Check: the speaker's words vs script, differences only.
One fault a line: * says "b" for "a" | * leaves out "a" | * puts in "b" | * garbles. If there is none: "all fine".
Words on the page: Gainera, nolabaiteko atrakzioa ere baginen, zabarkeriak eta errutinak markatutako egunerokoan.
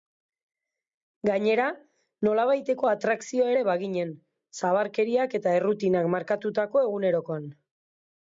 all fine